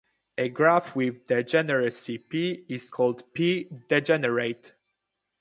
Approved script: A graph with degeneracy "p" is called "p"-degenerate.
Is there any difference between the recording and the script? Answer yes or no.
no